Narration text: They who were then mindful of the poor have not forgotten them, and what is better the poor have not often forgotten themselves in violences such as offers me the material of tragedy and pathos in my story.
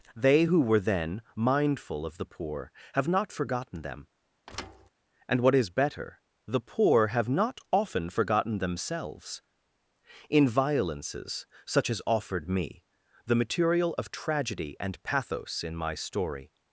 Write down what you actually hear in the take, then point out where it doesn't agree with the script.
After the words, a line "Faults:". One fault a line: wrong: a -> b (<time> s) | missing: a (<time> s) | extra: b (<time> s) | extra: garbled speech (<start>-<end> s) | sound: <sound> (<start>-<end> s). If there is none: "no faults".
They who were then mindful of the poor have not forgotten them, and what is better the poor have not often forgotten themselves in violences such as offered me the material of tragedy and pathos in my story.
Faults:
sound: thud (4.5-4.9 s)
wrong: offers -> offered (12.1 s)